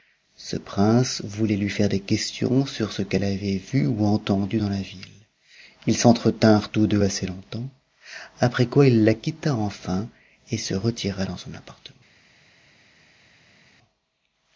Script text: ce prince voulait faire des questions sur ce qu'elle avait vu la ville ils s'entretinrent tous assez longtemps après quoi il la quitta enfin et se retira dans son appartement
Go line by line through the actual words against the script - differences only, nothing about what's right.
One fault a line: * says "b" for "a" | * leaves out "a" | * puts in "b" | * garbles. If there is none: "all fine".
* puts in "lui"
* puts in "ou entendu dans"
* puts in "deux"